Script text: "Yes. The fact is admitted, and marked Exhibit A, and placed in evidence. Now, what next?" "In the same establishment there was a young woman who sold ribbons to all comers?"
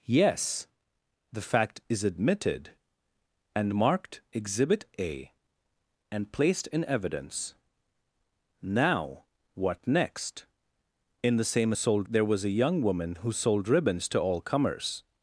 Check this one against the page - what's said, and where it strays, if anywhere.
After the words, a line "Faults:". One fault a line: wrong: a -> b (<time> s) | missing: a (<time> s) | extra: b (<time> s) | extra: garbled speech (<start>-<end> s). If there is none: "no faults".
"Yes. The fact is admitted, and marked Exhibit A, and placed in evidence. Now, what next?" "In the same sold there was a young woman who sold ribbons to all comers?"
Faults:
wrong: establishment -> sold (11.7 s)